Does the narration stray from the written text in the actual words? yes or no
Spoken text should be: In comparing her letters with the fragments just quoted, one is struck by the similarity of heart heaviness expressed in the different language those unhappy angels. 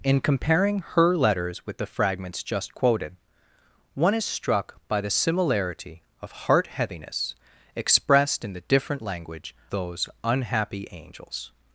no